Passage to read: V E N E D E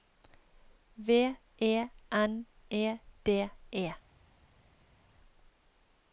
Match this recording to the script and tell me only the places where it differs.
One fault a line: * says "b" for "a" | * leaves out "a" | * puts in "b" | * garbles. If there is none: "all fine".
all fine